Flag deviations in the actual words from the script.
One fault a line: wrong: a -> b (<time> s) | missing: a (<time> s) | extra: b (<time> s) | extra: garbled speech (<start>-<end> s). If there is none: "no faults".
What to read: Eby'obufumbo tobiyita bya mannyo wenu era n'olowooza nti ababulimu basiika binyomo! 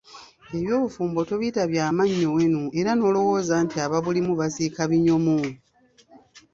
no faults